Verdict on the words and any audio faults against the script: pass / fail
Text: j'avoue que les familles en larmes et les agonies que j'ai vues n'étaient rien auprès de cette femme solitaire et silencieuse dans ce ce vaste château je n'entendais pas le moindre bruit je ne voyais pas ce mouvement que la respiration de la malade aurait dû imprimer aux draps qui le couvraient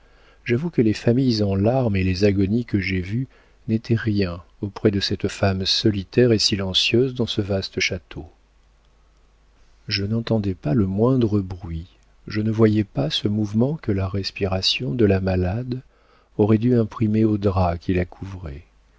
fail